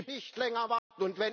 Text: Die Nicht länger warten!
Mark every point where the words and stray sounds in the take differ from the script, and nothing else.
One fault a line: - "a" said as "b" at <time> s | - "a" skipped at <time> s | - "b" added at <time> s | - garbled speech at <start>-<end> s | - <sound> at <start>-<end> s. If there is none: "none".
- dropout at 0.8-0.9 s